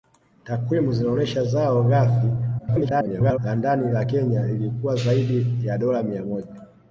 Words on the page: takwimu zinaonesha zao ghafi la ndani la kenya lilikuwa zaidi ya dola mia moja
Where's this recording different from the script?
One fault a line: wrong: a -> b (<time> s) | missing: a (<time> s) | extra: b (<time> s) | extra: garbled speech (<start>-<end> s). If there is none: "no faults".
extra: garbled speech (2.6-3.4 s)